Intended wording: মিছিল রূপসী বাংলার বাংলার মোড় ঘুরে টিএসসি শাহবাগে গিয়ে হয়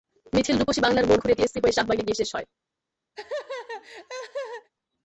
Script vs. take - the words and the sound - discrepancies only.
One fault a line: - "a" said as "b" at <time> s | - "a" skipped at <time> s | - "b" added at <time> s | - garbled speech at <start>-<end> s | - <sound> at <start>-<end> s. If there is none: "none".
- "বাংলার" skipped at 1.1 s
- "হয়ে" added at 1.6 s
- "শেষ" added at 2.2 s
- laugh at 3.1-4.7 s